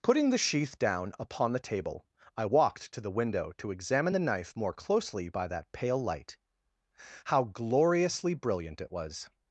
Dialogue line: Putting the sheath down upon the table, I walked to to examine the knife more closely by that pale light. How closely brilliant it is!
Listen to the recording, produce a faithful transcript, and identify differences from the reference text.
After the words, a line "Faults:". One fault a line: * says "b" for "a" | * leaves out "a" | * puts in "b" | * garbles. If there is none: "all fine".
Putting the sheath down upon the table, I walked to the window to examine the knife more closely by that pale light. How gloriously brilliant it was!
Faults:
* puts in "the window"
* says "gloriously" for "closely"
* says "was" for "is"